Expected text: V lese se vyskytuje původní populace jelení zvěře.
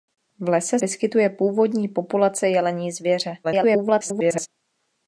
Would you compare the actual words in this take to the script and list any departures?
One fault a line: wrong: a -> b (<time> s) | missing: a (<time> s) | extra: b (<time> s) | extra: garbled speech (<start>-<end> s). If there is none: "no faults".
missing: se (0.8 s)
extra: garbled speech (3.4-4.5 s)